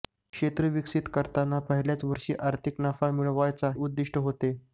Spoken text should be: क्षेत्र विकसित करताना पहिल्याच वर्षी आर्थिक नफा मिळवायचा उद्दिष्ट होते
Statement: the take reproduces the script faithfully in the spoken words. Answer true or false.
true